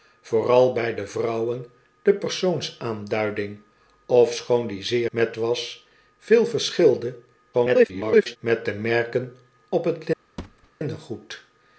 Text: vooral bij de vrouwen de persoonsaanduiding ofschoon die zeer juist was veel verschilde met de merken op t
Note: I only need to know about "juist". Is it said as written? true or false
false